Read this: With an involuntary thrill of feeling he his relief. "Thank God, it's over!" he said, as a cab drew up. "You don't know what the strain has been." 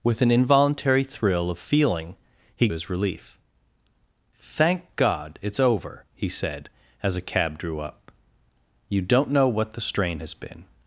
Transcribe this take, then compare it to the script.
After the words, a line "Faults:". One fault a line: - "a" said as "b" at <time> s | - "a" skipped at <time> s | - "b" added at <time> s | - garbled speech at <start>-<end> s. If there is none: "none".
With an involuntary thrill of feeling he his relief. "Thank God, it's over!" he said, as a cab drew up. "You don't know what the strain has been."
Faults:
none